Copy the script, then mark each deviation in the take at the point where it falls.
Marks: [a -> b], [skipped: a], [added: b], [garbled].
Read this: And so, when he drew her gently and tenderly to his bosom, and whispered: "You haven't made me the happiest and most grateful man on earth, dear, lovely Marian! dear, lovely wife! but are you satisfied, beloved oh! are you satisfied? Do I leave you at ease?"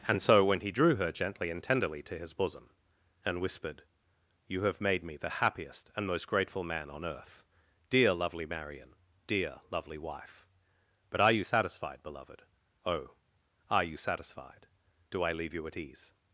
And so, when he drew her gently and tenderly to his bosom, and whispered: "You [haven't -> have] made me the happiest and most grateful man on earth, dear, lovely Marian! dear, lovely wife! but are you satisfied, beloved oh! are you satisfied? Do I leave you at ease?"